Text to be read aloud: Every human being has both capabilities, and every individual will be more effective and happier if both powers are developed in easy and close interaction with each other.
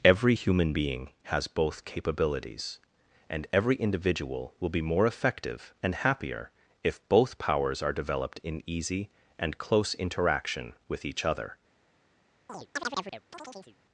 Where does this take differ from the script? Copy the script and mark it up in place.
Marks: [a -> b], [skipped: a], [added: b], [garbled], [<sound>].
Every human being has both capabilities, and every individual will be more effective and happier if both powers are developed in easy and close interaction with each other. [chirp]